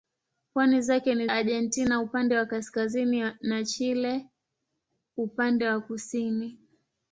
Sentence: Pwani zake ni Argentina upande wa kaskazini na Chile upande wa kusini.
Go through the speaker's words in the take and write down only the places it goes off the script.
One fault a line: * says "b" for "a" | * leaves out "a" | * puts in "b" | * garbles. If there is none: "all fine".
all fine